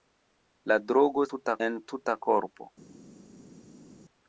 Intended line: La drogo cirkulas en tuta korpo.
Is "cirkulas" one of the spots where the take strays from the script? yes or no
yes